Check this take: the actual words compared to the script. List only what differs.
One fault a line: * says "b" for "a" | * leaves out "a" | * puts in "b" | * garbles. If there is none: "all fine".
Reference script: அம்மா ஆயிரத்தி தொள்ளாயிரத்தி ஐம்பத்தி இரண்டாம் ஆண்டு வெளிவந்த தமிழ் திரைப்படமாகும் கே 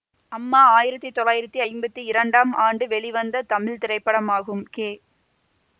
all fine